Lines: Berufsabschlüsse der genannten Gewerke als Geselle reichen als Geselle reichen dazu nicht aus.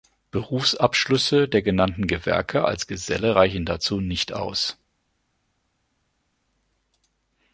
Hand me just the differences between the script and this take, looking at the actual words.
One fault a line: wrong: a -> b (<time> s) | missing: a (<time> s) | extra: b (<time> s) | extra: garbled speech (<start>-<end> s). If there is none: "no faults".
missing: als Geselle reichen (3.6 s)